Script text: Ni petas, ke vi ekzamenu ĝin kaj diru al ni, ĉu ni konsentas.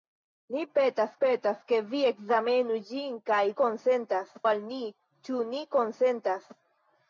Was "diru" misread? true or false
true